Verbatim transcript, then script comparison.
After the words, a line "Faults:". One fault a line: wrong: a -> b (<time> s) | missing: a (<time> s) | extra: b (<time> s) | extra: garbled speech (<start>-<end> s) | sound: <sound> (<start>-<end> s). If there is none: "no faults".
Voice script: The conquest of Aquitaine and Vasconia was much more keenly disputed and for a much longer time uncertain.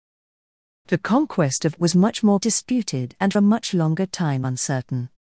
The conquest of Was much more disputed and a much longer time uncertain.
Faults:
missing: Aquitaine and Vasconia (1.7 s)
missing: keenly (2.4 s)
missing: for (3.3 s)